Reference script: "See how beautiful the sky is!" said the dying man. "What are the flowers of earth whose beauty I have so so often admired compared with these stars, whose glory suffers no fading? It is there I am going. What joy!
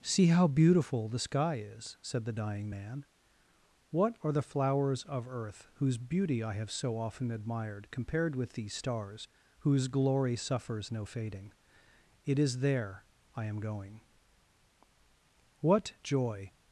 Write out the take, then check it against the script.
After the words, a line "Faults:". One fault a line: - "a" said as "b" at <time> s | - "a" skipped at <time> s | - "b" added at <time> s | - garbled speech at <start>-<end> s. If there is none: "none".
"See how beautiful the sky is!" said the dying man. "What are the flowers of earth whose beauty I have so often admired compared with these stars, whose glory suffers no fading? It is there I am going. What joy!
Faults:
- "so" skipped at 7.0 s